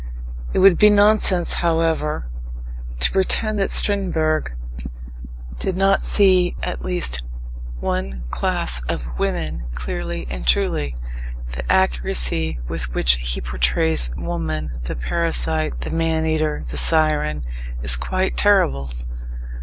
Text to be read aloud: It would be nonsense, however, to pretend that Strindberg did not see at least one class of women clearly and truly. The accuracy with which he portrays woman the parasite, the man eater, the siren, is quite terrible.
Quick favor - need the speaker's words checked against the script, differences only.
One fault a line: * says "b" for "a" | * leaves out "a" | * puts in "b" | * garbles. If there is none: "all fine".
all fine